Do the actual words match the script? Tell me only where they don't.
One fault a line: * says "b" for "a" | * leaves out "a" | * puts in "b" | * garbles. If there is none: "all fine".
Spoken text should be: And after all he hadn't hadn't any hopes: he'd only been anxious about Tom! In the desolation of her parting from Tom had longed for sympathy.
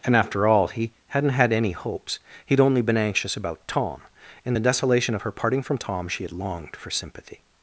* says "had" for "hadn't"
* puts in "she"